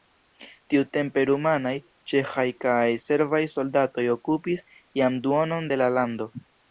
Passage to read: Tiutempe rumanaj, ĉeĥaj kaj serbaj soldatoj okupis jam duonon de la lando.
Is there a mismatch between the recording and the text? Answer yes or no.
no